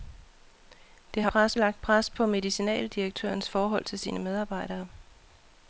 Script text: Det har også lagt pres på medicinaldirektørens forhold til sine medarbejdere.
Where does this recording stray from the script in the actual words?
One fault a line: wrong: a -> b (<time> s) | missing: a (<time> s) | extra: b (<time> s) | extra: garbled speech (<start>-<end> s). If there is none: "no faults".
wrong: også -> pres (1.3 s)